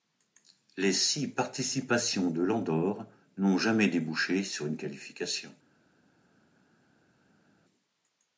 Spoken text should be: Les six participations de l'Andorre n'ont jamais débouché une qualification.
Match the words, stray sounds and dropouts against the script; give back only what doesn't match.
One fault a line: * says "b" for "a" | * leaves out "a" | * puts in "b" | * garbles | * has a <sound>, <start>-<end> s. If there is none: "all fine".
* puts in "sur"